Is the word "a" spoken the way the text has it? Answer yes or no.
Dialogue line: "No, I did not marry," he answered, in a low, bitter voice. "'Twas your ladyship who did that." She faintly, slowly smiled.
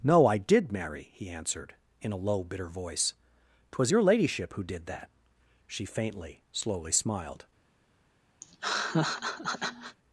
yes